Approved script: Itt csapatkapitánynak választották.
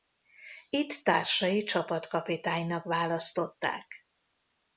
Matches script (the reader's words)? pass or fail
fail